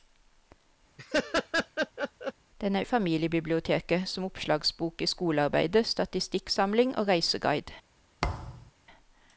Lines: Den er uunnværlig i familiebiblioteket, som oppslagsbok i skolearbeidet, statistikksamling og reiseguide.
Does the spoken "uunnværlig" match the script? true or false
false